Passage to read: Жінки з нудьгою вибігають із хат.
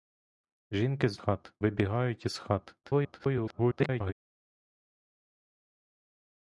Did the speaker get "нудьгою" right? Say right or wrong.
wrong